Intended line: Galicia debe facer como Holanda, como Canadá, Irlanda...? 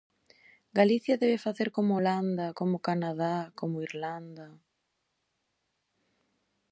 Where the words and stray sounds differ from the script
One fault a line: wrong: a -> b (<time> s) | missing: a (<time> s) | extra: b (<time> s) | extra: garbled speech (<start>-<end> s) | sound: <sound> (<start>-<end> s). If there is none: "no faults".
extra: como (3.5 s)